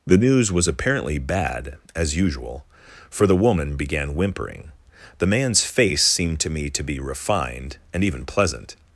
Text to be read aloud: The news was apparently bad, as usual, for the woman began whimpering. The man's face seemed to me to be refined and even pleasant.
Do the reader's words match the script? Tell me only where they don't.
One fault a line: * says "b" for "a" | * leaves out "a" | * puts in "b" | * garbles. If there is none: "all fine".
all fine